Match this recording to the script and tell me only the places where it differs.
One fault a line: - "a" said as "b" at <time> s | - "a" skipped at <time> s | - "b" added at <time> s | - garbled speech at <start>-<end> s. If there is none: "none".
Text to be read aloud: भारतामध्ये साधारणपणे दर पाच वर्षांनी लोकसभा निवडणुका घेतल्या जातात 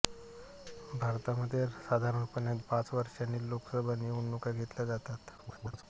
- "दर" skipped at 2.5 s
- garbled speech at 5.4-5.8 s